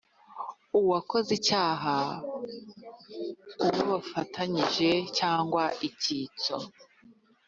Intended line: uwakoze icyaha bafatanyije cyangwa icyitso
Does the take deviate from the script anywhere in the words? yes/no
yes